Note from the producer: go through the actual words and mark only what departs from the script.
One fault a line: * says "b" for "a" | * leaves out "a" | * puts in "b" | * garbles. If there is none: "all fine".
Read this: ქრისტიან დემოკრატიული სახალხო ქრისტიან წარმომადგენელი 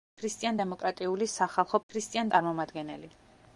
all fine